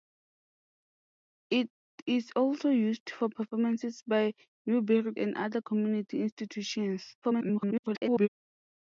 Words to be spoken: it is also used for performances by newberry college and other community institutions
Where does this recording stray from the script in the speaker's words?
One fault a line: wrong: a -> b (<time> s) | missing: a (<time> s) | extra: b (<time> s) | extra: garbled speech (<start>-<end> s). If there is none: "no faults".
missing: college (5.1 s)
extra: garbled speech (7.2-8.3 s)